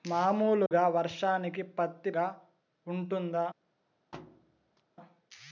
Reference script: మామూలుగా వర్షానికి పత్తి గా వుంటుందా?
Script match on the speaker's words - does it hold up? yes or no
yes